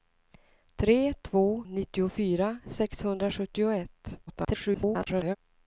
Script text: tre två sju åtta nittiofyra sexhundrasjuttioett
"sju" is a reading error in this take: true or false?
true